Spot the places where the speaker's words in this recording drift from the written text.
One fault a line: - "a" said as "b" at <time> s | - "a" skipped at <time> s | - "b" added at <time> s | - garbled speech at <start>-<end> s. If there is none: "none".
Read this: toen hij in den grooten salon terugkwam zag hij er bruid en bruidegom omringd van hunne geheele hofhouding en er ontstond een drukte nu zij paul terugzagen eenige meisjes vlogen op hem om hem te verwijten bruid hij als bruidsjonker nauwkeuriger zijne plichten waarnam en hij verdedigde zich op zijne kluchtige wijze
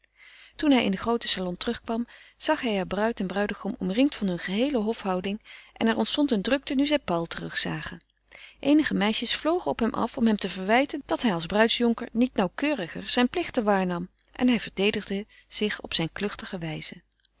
- "af" added at 9.9 s
- "bruid" said as "dat" at 11.1 s
- "niet" added at 12.1 s